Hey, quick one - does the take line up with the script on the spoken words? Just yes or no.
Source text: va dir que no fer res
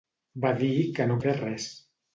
yes